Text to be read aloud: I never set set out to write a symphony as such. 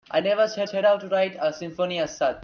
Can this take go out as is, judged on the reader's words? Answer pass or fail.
pass